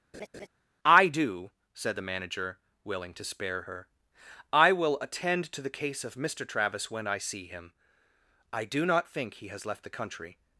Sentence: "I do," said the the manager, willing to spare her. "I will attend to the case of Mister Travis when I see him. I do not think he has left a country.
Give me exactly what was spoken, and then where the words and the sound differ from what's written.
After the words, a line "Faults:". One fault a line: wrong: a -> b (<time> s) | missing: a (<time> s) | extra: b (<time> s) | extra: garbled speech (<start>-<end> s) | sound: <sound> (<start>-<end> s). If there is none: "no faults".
"I do," said the manager, willing to spare her. "I will attend to the case of Mister Travis when I see him. I do not think he has left the country.
Faults:
sound: laugh (0.1-0.5 s)
missing: the (2.1 s)
wrong: a -> the (9.8 s)